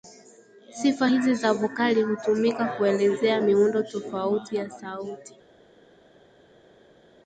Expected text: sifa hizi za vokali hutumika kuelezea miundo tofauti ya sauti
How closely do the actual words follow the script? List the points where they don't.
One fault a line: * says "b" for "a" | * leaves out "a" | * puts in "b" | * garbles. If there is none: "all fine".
all fine